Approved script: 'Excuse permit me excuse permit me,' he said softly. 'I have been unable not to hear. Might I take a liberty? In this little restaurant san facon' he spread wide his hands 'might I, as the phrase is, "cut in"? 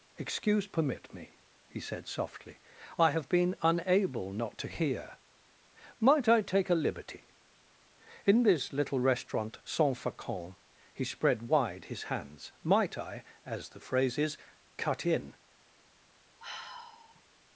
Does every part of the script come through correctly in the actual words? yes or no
no